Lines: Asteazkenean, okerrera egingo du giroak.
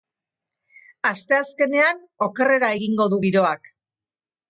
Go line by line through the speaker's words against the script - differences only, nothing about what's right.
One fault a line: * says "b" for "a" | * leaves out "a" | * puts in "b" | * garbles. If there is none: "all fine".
all fine